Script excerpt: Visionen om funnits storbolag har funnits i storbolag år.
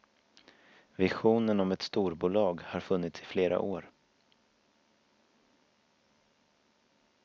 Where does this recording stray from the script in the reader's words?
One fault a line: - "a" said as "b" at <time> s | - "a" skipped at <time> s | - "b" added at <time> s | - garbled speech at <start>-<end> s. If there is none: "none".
- "funnits" said as "ett" at 1.7 s
- "storbolag" said as "flera" at 3.2 s